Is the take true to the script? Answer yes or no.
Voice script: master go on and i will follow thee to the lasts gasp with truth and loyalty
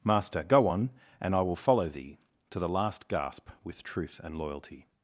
no